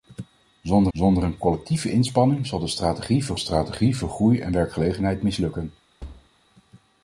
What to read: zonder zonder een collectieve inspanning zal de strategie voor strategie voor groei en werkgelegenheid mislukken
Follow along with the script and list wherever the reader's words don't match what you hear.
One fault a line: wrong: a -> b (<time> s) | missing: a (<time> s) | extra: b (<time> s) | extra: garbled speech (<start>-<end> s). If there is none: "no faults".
no faults